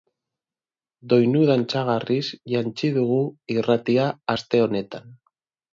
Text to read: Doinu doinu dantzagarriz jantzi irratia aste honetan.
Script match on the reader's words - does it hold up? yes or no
no